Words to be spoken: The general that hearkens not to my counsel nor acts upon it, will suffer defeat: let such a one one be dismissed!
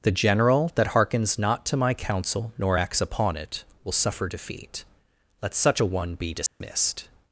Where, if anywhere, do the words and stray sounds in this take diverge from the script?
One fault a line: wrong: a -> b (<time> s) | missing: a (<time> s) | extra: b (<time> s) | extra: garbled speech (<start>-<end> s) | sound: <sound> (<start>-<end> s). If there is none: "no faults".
missing: one (6.1 s)
sound: dropout (6.5-6.6 s)